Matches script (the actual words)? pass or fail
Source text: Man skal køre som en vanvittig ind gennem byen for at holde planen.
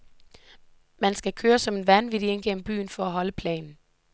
pass